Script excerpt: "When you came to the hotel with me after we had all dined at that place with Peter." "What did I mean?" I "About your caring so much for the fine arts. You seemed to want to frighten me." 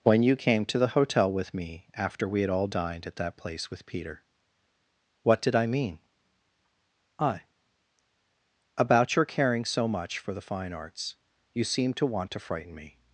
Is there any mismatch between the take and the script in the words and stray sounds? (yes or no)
no